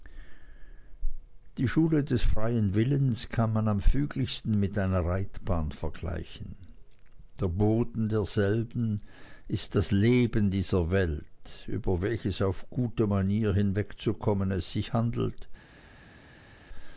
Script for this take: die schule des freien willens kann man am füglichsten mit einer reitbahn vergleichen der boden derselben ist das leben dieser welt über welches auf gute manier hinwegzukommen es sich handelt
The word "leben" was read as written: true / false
true